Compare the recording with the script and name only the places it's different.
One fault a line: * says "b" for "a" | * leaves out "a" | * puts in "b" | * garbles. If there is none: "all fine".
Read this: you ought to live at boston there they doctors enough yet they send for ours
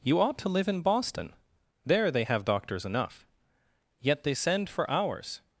* says "in" for "at"
* puts in "have"